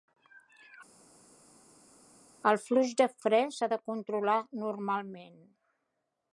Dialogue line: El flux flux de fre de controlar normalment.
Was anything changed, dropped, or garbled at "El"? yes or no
no